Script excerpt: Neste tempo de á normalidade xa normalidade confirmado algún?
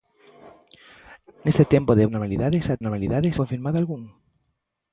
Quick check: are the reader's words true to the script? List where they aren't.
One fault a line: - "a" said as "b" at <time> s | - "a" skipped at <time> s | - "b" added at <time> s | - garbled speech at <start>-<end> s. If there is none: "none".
none